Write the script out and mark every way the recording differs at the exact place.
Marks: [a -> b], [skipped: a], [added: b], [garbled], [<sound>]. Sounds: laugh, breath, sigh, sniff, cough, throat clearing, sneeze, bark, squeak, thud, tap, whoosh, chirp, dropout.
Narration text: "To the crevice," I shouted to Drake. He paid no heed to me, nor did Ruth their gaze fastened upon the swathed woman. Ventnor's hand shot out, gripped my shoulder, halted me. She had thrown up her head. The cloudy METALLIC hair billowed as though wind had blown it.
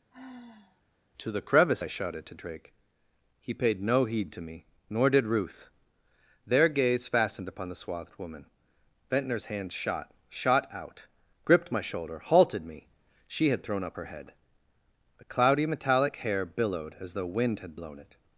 [sigh] "To the crevice," I shouted to Drake. He paid no heed to me, nor did Ruth their gaze fastened upon the swathed woman. Ventnor's hand shot [added: shot] out, gripped my shoulder, halted me. She had thrown up her head. The cloudy METALLIC hair billowed as though wind had blown it.